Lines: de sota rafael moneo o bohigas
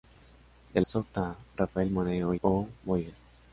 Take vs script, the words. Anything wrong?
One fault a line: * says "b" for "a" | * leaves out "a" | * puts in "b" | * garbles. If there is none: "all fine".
all fine